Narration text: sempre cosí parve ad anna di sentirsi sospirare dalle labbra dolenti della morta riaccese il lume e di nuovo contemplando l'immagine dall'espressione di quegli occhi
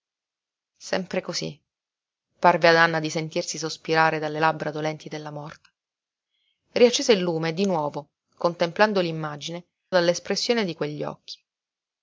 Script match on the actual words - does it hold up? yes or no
yes